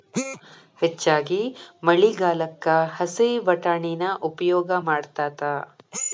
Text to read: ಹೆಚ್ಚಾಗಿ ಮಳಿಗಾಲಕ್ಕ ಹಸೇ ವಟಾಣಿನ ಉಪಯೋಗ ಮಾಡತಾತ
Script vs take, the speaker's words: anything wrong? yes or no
no